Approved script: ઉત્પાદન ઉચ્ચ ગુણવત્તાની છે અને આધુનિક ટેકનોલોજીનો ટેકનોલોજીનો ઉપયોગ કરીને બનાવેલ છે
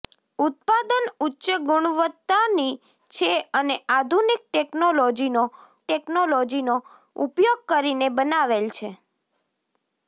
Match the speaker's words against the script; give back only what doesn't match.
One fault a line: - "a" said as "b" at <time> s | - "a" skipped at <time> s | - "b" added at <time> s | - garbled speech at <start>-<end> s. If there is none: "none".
none